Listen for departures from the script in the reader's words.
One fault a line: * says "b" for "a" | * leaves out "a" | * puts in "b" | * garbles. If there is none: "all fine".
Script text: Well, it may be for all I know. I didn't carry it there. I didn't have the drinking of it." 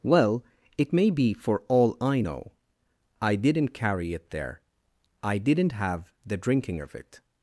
all fine